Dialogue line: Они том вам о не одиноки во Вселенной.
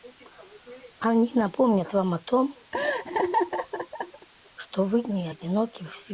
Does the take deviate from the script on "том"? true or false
true